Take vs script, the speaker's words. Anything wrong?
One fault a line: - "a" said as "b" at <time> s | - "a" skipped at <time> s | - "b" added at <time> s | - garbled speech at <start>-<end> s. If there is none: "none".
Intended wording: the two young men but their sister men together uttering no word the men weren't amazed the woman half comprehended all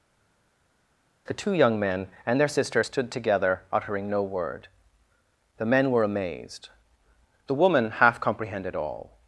- "but" said as "and" at 2.2 s
- "men" said as "stood" at 2.8 s
- "weren't" said as "were" at 5.9 s